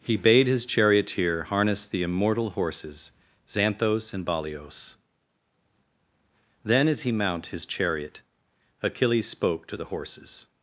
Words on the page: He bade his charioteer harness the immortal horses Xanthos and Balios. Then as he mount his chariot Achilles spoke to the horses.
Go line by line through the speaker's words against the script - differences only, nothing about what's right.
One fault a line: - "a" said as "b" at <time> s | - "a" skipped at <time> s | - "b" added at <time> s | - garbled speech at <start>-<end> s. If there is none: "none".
none